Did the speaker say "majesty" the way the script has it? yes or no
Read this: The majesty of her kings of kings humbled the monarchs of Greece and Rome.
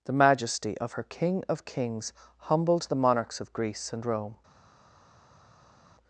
yes